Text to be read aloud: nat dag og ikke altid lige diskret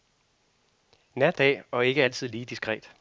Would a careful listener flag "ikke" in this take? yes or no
no